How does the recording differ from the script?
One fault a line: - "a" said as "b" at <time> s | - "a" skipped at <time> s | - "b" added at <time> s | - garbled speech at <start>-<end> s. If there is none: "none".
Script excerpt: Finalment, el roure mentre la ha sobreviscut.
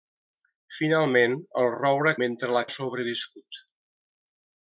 none